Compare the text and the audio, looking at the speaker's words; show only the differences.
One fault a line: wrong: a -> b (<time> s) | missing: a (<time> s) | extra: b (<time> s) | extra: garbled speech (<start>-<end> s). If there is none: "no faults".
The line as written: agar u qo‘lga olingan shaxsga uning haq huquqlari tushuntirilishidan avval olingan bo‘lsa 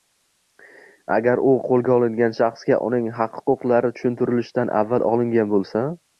no faults